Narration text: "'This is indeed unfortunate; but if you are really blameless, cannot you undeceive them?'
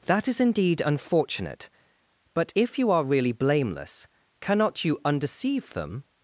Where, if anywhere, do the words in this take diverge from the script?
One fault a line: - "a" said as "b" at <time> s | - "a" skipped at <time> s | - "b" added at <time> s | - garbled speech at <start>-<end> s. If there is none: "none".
- "This" said as "That" at 0.1 s